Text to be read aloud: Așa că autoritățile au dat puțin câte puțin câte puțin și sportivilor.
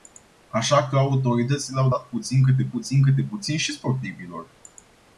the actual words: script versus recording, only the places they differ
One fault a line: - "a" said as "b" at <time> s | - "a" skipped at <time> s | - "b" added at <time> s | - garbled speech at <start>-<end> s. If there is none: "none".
none